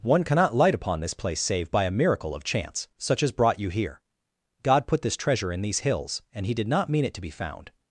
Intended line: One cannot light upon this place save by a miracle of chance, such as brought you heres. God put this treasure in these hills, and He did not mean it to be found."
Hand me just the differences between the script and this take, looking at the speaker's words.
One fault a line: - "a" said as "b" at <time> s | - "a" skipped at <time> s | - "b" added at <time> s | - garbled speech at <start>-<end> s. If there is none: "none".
- "heres" said as "here" at 3.7 s